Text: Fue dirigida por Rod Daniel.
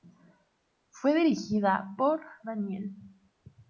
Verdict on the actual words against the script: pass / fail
fail